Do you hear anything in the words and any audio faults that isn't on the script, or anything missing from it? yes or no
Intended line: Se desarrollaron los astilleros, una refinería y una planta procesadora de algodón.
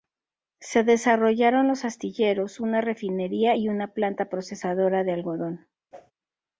yes